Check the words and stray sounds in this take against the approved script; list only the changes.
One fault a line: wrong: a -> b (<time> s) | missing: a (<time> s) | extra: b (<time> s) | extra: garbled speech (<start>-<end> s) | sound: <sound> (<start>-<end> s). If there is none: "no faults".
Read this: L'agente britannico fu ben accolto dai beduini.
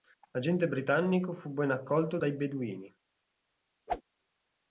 sound: whoosh (3.9-4.0 s)